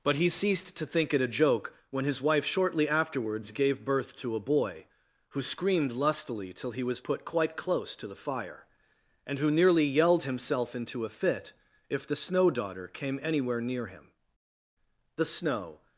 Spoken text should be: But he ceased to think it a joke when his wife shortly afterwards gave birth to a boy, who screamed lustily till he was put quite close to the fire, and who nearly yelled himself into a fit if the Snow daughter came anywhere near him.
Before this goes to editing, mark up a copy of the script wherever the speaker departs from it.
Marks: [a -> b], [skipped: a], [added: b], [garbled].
But he ceased to think it a joke when his wife shortly afterwards gave birth to a boy, who screamed lustily till he was put quite close to the fire, and who nearly yelled himself into a fit if the Snow daughter came anywhere near him. [added: The Snow]